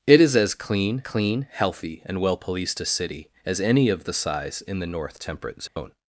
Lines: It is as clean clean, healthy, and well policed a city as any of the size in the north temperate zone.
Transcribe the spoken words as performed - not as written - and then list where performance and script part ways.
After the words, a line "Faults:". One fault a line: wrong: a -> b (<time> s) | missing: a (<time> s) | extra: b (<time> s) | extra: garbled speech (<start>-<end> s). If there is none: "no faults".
It is as clean clean, healthy, and well policed a city as any of the size in the north temperate zone.
Faults:
no faults